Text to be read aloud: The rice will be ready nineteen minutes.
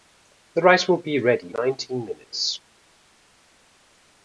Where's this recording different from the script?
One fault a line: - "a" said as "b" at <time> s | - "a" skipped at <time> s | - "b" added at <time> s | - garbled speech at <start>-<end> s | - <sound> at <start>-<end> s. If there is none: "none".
none